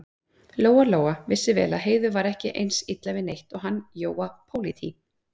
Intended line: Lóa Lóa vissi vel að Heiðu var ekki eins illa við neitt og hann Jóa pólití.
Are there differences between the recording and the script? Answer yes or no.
no